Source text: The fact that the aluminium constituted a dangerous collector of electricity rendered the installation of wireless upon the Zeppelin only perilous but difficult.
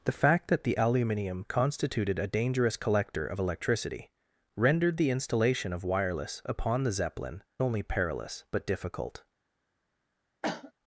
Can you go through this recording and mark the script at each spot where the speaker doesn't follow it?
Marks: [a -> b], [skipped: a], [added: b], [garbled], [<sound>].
The fact that the aluminium constituted a dangerous collector of electricity rendered the installation of wireless upon the Zeppelin only perilous but difficult. [cough]